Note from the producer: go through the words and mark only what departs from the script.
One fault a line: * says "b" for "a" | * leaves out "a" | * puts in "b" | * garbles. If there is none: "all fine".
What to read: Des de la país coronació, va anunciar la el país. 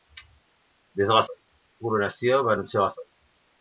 all fine